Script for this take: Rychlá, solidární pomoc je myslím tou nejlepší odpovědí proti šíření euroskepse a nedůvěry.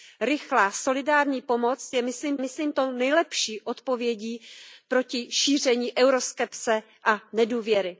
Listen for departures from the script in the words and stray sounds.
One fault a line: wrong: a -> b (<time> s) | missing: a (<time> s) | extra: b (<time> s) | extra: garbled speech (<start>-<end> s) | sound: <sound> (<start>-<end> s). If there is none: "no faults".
extra: myslím (2.4 s)